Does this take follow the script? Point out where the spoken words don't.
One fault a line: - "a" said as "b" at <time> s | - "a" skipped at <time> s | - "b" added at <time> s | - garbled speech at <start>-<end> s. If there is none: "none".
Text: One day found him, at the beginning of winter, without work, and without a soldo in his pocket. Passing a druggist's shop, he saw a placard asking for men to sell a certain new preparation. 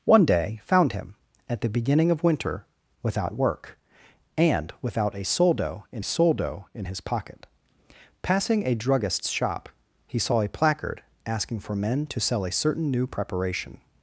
- "soldo in" added at 6.0 s